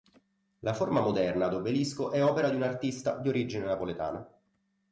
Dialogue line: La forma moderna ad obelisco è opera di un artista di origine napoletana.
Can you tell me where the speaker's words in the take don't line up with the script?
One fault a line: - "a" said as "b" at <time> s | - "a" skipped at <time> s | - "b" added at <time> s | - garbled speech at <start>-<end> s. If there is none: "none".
none